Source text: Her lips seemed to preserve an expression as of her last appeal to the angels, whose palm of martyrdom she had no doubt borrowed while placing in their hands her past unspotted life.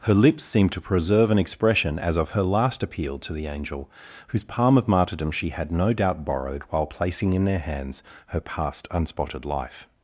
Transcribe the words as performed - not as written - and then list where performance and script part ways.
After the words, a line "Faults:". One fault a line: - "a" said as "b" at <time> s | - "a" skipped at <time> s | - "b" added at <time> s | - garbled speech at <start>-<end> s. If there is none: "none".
Her lips seemed to preserve an expression as of her last appeal to the angel, whose palm of martyrdom she had no doubt borrowed while placing in their hands her past unspotted life.
Faults:
- "angels" said as "angel" at 3.5 s